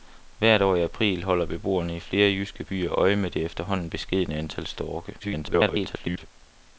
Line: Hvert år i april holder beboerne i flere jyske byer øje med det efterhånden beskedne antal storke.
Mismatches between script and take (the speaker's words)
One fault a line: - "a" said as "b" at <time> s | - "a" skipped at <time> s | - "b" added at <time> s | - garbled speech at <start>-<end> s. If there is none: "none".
- garbled speech at 5.2-6.3 s